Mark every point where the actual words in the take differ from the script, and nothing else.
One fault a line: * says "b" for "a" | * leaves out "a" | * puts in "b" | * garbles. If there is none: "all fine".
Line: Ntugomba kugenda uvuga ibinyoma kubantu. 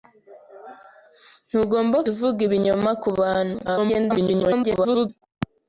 * leaves out "kugenda"
* garbles